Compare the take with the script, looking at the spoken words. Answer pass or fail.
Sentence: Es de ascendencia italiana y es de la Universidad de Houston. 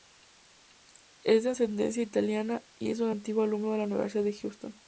fail